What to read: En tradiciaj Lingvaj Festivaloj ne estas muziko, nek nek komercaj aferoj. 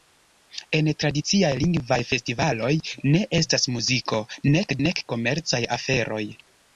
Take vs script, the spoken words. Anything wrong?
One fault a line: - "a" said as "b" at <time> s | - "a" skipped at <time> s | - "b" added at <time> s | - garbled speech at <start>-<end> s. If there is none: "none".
none